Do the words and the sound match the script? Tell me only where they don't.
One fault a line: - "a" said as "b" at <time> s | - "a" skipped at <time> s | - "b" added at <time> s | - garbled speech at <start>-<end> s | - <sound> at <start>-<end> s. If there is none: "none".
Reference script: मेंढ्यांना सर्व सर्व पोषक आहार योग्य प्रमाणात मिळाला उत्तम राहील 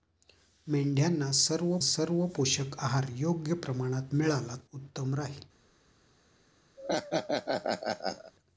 - laugh at 6.8-8.3 s